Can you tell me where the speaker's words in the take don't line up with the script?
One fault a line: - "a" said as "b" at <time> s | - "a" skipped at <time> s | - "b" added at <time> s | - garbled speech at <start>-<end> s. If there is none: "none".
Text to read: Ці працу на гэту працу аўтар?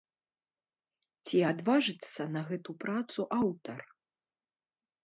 - "працу" said as "адважыцца" at 1.5 s